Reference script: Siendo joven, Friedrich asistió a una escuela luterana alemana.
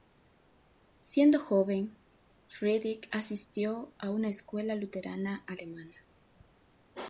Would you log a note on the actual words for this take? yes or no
no